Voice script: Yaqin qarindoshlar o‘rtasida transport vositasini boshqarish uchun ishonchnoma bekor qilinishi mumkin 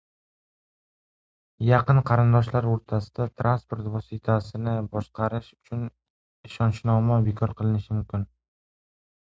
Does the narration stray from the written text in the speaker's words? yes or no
no